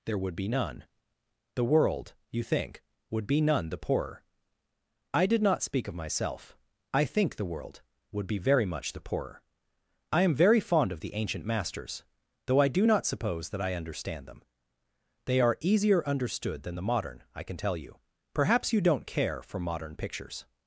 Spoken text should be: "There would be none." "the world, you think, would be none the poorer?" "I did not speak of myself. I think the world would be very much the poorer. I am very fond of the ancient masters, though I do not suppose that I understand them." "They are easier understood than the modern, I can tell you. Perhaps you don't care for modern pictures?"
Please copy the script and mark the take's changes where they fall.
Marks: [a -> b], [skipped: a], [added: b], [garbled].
"There would be none." "the world, you think, would be none the poorer?" "I did not speak of myself. I think the world would be very much the poorer. I am very fond of the ancient masters, though I do not suppose that I understand them." "They are easier understood than the modern, I can tell you. Perhaps you don't care for modern pictures?"